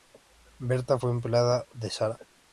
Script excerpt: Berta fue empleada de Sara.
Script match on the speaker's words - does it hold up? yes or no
yes